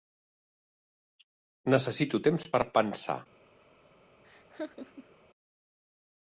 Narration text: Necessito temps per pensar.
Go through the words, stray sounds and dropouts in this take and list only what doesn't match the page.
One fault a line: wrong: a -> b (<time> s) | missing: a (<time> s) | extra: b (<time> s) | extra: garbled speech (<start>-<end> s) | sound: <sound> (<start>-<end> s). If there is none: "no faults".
sound: laugh (4.2-5.2 s)